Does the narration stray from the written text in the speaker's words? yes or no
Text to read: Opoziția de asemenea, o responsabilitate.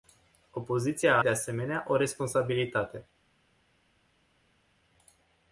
no